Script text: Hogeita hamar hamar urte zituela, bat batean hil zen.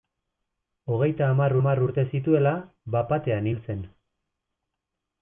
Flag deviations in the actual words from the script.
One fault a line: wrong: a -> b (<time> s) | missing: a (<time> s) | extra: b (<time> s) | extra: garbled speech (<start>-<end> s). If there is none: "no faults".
no faults